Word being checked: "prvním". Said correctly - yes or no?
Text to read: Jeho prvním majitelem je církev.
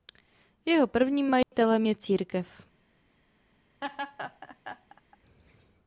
yes